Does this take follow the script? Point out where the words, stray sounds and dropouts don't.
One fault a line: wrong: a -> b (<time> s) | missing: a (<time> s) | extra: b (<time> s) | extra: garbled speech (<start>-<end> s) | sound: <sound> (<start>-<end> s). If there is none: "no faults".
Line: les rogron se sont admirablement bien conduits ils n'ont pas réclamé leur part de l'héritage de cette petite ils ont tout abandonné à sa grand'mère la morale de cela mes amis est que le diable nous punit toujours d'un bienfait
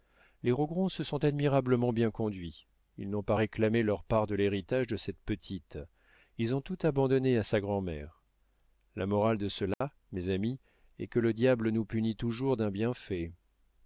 sound: dropout (9.7-9.8 s)